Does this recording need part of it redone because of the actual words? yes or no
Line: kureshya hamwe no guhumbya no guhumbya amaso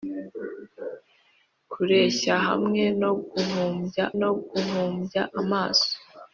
no